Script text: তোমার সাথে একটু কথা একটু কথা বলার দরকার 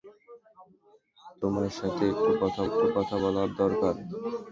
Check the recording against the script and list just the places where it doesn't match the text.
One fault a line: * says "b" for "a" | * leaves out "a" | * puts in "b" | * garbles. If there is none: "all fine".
all fine